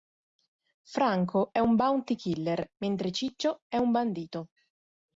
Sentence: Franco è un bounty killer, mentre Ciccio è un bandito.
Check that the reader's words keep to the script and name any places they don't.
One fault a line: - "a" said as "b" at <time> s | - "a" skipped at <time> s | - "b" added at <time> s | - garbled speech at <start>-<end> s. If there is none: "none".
none